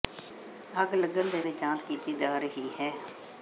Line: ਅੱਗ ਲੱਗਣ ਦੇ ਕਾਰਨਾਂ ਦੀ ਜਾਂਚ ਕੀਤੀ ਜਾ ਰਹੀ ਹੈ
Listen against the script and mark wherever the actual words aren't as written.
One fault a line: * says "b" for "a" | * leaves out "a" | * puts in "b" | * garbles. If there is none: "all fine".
* leaves out "ਕਾਰਨਾਂ"